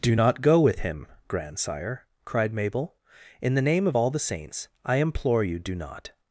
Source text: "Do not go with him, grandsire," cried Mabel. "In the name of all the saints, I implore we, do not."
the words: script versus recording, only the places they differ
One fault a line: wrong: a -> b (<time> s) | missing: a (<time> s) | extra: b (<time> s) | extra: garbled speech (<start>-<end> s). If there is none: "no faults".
wrong: we -> you (5.4 s)